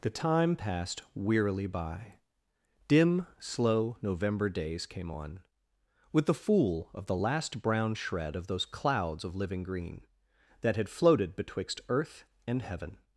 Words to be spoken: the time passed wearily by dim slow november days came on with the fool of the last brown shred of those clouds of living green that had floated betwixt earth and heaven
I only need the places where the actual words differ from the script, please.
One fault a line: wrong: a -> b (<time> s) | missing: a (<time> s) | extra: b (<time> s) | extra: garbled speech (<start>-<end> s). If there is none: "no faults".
no faults